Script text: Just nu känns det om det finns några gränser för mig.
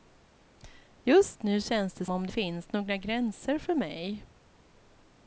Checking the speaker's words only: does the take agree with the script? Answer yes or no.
yes